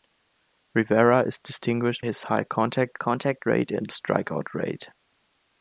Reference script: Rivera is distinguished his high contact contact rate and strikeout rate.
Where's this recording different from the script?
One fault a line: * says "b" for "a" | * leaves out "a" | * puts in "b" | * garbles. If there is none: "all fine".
all fine